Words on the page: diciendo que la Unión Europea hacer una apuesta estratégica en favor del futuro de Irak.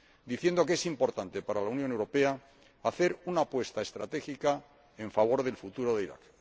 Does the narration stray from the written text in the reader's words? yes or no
yes